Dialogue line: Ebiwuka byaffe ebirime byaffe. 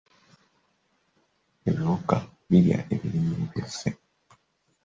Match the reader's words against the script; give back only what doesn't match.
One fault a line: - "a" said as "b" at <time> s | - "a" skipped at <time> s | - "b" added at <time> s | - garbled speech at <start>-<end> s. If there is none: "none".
- "byaffe" said as "birya" at 2.5 s